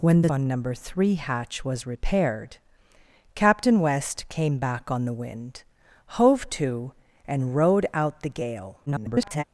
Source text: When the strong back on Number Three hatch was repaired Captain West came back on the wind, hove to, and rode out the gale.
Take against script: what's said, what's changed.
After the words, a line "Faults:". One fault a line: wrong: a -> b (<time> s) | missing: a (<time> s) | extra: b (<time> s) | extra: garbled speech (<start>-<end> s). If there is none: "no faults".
When the on Number Three hatch was repaired Captain West came back on the wind, hove to, and rode out the gale. [garbled]
Faults:
missing: strong back (0.3 s)
extra: garbled speech (8.9-9.4 s)